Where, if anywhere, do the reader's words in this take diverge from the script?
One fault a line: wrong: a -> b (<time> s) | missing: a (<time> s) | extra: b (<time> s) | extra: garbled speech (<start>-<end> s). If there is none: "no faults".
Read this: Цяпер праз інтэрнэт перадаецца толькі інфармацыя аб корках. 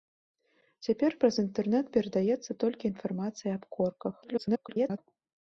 extra: garbled speech (4.2-5.0 s)